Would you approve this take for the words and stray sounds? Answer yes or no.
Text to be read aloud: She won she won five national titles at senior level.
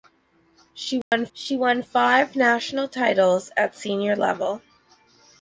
no